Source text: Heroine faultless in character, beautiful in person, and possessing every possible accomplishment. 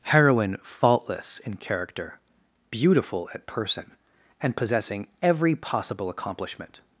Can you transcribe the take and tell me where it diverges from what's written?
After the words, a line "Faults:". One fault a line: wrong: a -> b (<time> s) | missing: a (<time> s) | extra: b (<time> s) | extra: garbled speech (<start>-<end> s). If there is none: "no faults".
Heroine faultless in character, beautiful at person, and possessing every possible accomplishment.
Faults:
wrong: in -> at (3.3 s)